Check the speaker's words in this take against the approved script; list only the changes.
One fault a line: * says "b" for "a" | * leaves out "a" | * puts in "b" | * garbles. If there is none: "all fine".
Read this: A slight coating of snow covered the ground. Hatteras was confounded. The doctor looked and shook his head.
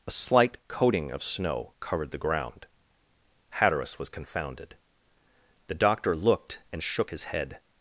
all fine